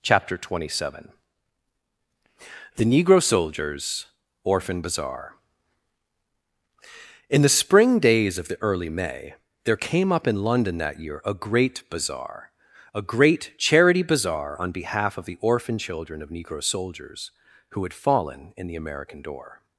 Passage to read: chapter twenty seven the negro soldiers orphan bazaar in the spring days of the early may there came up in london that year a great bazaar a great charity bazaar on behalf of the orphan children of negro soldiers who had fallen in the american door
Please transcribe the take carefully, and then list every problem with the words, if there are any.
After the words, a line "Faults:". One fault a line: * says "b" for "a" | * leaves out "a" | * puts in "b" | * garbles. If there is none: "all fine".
chapter twenty seven the negro soldiers orphan bazaar in the spring days of the early may there came up in london that year a great bazaar a great charity bazaar on behalf of the orphan children of negro soldiers who had fallen in the american door
Faults:
all fine